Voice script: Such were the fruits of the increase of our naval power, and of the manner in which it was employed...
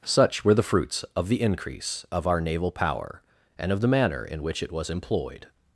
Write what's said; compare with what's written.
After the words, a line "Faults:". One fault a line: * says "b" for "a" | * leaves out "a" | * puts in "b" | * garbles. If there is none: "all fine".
Such were the fruits of the increase of our naval power, and of the manner in which it was employed...
Faults:
all fine